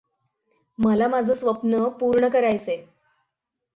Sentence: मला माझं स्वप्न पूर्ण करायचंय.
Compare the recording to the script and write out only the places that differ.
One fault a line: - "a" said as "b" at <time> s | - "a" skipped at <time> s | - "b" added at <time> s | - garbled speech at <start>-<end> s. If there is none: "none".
none